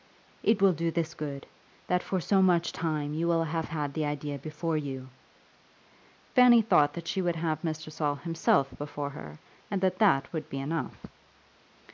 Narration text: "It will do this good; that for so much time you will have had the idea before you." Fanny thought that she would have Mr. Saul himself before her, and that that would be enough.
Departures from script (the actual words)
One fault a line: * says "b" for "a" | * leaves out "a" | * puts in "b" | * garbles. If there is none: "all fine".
all fine